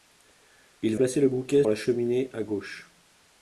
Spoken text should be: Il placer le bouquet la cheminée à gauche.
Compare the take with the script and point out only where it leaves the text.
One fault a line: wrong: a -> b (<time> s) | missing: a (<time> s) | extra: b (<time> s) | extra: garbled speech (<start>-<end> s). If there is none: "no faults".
no faults